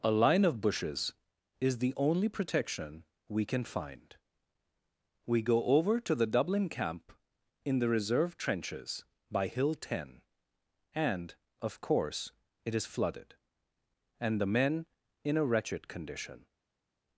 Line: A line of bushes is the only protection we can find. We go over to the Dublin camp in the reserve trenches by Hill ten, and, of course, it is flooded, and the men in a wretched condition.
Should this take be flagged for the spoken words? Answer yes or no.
no